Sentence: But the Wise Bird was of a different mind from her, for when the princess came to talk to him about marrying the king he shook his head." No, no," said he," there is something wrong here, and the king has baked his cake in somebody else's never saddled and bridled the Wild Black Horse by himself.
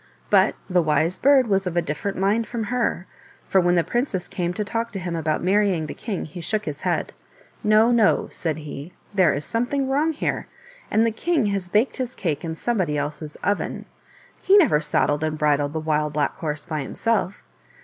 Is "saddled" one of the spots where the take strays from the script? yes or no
no